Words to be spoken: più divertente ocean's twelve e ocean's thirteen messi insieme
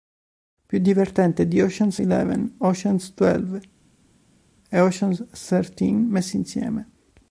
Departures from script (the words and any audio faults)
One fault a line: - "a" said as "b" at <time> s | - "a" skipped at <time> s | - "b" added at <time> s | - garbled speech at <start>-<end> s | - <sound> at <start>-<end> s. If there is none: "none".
- "di ocean's eleven" added at 1.5 s